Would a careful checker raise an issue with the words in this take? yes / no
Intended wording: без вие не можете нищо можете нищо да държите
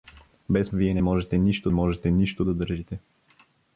no